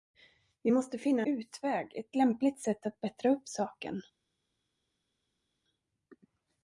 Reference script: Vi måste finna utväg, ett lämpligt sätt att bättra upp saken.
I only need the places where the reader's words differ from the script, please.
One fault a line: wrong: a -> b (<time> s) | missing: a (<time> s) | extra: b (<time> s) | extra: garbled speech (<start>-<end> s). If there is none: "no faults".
no faults